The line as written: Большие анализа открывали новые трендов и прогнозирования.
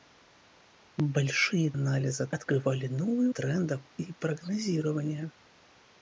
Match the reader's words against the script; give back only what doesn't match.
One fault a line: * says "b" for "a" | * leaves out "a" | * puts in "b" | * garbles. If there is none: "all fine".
all fine